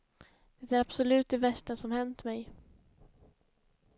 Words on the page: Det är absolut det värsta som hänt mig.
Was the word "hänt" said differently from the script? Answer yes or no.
no